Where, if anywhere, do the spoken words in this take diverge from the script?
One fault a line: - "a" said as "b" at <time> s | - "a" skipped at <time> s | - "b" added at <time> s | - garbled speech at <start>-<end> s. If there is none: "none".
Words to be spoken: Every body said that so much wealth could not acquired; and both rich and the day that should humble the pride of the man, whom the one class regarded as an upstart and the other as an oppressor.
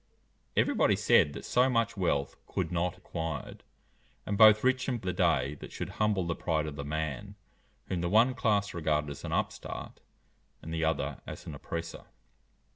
none